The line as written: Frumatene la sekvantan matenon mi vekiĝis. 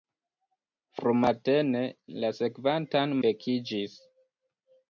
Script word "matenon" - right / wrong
wrong